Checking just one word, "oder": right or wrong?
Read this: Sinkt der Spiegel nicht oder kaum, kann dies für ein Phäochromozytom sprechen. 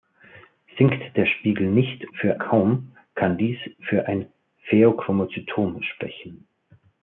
wrong